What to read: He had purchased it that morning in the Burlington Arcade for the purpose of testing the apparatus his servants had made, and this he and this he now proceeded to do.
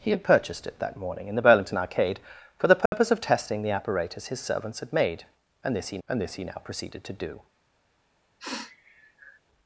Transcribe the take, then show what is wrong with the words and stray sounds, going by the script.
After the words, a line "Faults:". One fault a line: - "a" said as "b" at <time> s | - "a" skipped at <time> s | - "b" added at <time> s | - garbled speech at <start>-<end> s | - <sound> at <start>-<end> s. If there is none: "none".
He had purchased it that morning in the Burlington Arcade for the purpose of testing the apparatus his servants had made, and this he and this he now proceeded to do.
Faults:
- dropout at 2.9-2.9 s
- sniff at 8.4-9.4 s